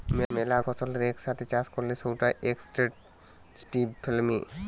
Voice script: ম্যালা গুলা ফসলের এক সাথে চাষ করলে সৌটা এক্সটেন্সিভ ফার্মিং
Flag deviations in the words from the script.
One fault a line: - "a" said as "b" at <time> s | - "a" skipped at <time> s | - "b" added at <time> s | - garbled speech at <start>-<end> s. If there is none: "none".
- "গুলা" skipped at 0.6 s